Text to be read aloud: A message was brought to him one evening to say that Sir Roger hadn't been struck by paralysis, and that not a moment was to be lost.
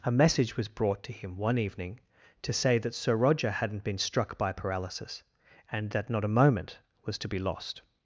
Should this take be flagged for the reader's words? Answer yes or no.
no